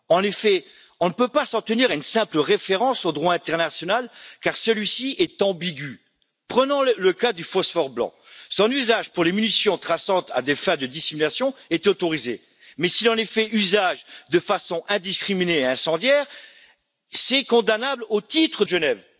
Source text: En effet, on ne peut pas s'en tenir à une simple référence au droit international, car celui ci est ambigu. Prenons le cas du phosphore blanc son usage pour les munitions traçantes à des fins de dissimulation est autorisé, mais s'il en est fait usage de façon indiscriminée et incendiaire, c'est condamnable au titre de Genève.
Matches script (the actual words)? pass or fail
pass